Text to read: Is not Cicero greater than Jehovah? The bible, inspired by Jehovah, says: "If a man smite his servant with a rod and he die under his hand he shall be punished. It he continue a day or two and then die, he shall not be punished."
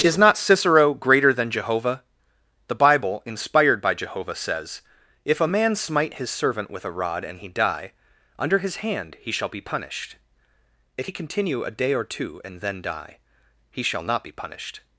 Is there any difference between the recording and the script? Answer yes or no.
yes